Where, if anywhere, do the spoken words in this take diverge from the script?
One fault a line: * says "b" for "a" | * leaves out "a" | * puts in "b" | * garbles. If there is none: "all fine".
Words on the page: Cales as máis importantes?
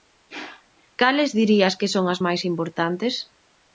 * puts in "dirías que son"